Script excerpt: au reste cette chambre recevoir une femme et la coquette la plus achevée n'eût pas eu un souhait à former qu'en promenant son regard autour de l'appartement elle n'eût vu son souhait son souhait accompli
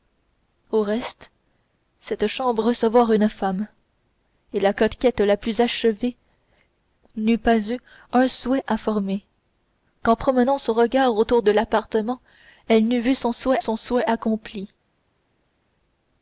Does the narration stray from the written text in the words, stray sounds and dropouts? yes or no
no